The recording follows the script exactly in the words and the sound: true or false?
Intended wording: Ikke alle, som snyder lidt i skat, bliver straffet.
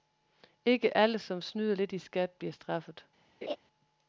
false